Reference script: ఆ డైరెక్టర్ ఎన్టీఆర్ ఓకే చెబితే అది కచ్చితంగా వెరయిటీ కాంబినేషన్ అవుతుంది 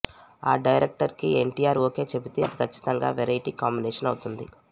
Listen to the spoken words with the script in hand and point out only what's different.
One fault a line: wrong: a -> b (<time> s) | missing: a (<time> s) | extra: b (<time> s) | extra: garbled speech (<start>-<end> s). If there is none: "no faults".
extra: కి (1.1 s)